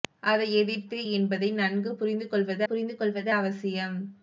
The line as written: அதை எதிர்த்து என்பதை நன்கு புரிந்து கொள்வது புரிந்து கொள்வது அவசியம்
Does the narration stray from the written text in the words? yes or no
no